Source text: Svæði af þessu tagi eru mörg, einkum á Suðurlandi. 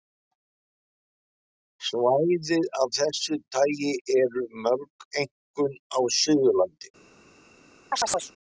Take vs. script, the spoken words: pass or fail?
pass